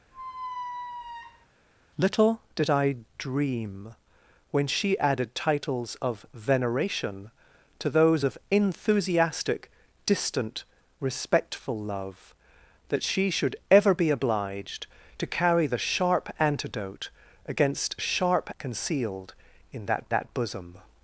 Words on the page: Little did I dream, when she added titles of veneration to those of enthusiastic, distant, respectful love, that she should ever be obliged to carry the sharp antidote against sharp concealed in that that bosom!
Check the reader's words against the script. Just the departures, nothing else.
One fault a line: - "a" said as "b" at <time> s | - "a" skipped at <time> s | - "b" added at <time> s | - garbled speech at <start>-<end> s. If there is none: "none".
none